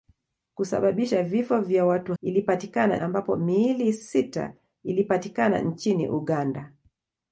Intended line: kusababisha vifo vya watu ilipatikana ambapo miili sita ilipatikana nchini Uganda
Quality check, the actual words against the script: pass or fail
pass